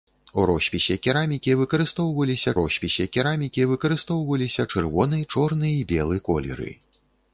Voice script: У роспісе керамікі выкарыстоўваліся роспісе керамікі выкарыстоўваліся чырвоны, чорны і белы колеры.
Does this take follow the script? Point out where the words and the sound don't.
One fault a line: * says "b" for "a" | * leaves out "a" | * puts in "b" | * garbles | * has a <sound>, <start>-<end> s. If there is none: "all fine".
all fine